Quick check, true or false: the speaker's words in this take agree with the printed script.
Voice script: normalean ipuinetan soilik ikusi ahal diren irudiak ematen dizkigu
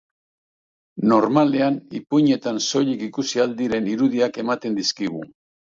true